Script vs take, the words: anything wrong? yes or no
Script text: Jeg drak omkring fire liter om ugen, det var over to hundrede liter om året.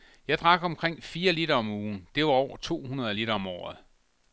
no